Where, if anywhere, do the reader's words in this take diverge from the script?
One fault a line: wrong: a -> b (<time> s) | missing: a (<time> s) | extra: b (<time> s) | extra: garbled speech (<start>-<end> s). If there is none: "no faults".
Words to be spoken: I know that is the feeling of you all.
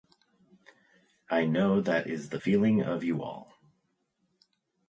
no faults